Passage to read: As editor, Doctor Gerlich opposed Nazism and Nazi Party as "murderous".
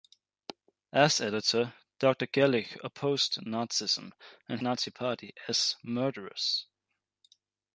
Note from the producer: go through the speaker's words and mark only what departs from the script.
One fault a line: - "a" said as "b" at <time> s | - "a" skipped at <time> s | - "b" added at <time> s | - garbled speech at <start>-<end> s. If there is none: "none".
none